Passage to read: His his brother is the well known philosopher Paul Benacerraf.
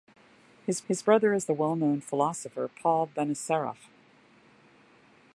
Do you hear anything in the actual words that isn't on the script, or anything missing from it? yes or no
no